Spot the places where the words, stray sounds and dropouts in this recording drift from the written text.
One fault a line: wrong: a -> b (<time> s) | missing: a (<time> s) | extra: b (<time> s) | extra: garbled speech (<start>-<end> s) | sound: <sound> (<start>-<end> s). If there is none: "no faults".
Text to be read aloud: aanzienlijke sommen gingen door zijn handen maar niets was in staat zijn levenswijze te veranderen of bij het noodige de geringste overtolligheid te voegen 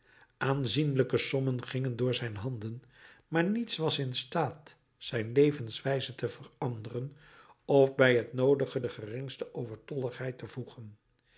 no faults